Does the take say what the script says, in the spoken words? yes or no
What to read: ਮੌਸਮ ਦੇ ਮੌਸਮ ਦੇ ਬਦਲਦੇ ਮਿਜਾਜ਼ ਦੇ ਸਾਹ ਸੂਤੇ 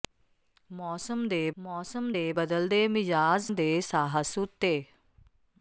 yes